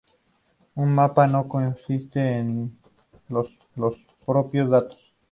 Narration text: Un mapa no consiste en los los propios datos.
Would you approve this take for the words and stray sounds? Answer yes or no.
yes